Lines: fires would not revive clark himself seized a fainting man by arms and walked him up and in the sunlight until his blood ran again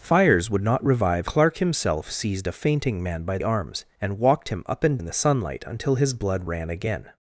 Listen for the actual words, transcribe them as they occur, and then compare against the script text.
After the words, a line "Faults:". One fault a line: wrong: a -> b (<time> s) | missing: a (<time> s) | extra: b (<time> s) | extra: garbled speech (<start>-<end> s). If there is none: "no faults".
fires would not revive clark himself seized a fainting man by arms and walked him up and in the sunlight until his blood ran again
Faults:
no faults